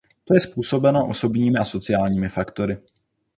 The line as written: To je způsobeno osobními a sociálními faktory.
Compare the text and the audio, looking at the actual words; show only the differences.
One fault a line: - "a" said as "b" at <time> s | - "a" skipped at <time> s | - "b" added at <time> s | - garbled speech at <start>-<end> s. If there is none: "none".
none